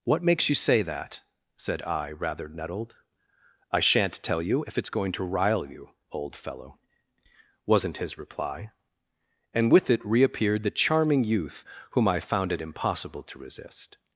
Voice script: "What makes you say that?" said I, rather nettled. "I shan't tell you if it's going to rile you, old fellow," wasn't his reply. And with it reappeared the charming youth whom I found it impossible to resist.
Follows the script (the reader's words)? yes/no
yes